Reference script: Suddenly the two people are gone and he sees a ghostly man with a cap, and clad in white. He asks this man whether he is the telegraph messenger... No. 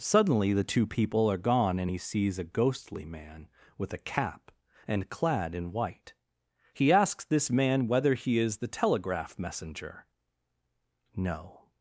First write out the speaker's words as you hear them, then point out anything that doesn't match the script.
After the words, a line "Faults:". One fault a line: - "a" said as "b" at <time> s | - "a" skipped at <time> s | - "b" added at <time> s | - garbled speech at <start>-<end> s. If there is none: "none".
Suddenly the two people are gone and he sees a ghostly man with a cap, and clad in white. He asks this man whether he is the telegraph messenger... No.
Faults:
none